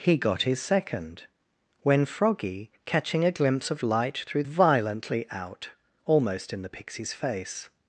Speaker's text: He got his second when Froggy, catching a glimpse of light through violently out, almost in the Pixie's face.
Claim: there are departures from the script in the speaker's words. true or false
false